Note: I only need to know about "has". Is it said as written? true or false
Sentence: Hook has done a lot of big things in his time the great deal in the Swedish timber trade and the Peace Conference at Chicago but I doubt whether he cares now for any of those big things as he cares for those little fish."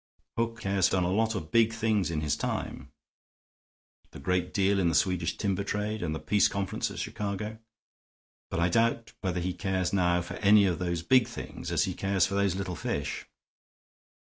false